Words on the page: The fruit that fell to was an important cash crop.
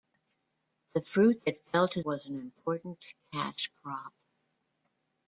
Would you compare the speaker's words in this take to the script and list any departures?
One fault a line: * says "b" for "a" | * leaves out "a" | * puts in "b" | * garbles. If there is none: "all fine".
all fine